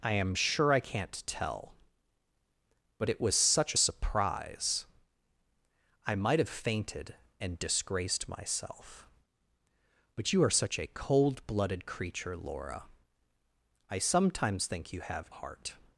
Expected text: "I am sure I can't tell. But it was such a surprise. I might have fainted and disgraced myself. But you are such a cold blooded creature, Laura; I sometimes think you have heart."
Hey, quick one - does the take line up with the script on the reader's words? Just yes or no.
yes